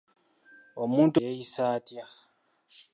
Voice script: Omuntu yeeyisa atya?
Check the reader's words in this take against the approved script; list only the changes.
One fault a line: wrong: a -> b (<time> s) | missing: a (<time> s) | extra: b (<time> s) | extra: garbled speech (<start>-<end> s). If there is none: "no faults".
no faults